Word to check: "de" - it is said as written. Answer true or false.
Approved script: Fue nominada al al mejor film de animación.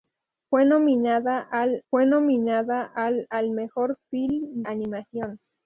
false